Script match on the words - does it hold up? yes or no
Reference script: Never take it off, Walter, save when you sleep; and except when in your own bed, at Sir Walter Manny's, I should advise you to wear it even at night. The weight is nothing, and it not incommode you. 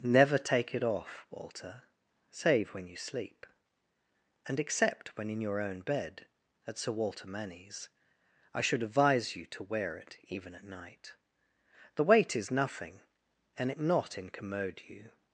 yes